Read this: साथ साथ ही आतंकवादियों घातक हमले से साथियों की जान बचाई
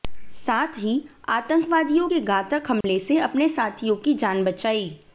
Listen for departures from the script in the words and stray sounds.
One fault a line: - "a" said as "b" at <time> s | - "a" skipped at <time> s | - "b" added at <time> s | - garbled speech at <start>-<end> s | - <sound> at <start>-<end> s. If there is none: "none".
- "साथ" skipped at 0.8 s
- "के" added at 2.0 s
- dropout at 2.8-2.8 s
- "अपने" added at 3.2 s